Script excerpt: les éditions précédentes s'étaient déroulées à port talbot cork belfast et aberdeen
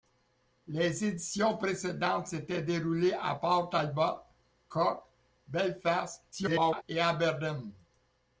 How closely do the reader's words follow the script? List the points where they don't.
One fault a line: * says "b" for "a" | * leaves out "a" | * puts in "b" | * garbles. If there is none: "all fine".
* garbles